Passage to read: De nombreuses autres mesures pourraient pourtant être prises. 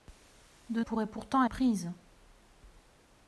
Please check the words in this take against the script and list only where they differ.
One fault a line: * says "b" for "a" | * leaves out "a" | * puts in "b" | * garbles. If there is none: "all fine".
* leaves out "nombreuses autres mesures"
* leaves out "être"